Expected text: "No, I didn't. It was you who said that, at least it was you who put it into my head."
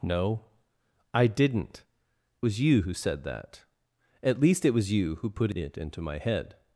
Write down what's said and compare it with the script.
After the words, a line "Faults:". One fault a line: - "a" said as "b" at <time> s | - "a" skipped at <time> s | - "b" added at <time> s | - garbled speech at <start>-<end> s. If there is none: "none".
"No, I didn't. Was you who said that, at least it was you who put it into my head."
Faults:
- "It" skipped at 1.9 s